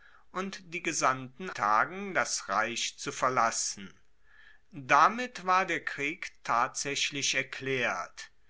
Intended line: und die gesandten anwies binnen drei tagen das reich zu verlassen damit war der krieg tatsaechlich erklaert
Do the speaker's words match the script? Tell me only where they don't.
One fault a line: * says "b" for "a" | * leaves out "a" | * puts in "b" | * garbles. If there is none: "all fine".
* leaves out "anwies binnen drei"